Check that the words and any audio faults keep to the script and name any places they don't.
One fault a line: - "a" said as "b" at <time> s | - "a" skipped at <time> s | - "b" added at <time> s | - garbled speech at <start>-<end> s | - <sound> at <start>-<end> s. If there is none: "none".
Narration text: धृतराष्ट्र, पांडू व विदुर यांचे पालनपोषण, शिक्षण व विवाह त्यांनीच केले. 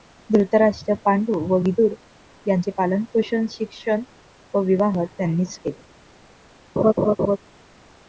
- laugh at 6.8-7.4 s